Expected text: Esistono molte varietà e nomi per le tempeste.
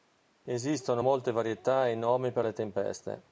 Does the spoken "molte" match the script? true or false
true